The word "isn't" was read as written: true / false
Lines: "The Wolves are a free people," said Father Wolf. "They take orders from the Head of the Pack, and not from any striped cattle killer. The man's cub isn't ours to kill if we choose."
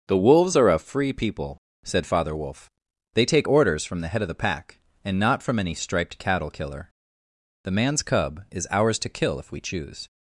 false